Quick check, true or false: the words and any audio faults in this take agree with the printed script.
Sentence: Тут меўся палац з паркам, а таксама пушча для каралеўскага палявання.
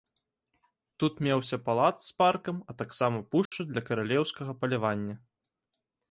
false